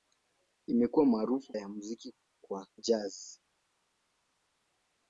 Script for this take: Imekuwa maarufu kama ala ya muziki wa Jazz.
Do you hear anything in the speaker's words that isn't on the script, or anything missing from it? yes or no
yes